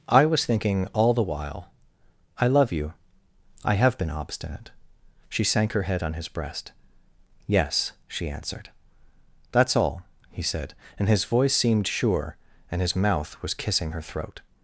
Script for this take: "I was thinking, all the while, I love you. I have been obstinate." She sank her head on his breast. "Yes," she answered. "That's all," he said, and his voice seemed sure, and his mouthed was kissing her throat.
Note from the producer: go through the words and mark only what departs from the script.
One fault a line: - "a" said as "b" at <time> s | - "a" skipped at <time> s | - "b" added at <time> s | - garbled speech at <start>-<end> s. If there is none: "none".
- "mouthed" said as "mouth" at 12.9 s